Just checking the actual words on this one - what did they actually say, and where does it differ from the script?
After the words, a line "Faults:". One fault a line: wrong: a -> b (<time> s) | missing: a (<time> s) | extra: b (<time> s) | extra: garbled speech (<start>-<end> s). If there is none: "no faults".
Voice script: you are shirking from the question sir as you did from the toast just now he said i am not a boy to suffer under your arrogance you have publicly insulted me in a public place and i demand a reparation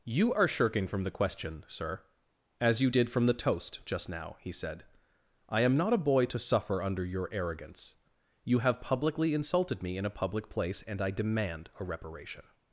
you are shirking from the question sir as you did from the toast just now he said i am not a boy to suffer under your arrogance you have publicly insulted me in a public place and i demand a reparation
Faults:
no faults